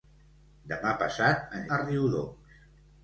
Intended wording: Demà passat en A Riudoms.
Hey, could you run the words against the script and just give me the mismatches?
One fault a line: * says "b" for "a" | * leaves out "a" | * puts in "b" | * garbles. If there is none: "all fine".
all fine